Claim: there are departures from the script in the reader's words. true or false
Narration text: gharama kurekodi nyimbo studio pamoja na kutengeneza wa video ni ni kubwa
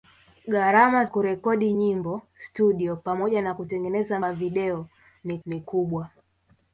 false